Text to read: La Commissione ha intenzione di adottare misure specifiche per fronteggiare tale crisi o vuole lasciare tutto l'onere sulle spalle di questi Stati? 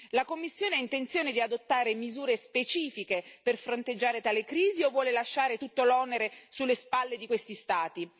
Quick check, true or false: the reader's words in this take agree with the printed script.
true